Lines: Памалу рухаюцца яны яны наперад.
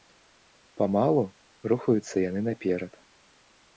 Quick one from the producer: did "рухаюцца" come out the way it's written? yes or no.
yes